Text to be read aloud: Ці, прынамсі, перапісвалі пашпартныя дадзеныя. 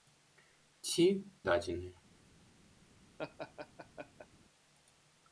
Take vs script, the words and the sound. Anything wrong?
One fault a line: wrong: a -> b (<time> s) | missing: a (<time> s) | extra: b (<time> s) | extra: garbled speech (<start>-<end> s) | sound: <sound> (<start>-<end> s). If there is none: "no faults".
missing: прынамсі перапісвалі пашпартныя (1.1 s)
sound: laugh (3.2-4.3 s)